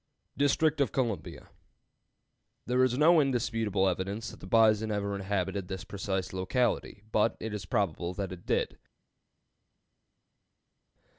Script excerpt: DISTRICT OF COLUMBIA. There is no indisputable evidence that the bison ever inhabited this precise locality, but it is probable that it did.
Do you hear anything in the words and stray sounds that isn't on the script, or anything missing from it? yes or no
no